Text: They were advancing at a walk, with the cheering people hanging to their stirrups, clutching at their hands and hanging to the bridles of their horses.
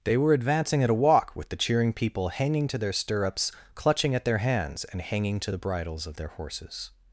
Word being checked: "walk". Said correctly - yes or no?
yes